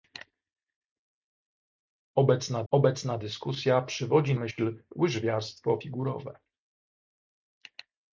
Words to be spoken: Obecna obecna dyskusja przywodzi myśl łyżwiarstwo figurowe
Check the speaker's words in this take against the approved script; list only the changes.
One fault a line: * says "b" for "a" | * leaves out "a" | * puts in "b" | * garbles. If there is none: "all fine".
all fine